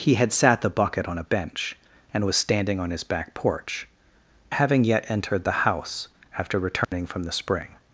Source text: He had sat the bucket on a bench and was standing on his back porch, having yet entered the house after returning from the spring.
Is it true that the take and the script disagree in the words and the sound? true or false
true